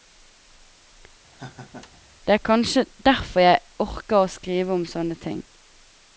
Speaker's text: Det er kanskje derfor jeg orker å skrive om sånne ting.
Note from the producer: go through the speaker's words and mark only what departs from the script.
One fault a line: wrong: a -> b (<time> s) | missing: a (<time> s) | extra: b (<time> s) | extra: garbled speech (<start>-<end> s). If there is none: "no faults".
no faults